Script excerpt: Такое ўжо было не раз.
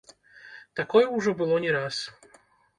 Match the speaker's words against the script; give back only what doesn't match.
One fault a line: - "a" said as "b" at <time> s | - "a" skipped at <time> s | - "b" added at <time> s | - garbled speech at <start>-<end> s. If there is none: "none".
none